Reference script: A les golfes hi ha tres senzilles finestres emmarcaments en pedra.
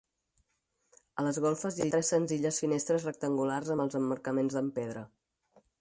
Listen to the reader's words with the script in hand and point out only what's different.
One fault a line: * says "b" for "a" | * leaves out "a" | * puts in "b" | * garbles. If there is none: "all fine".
* puts in "rectangulars amb els"